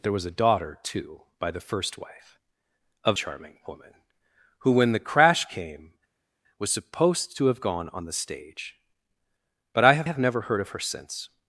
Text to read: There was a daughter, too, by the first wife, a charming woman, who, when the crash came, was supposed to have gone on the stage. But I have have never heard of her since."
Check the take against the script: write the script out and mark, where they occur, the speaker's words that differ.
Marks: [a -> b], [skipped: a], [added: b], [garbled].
There was a daughter, too, by the first wife, a charming woman, who, when the crash came, was supposed to have gone on the stage. But I have have never heard of her since."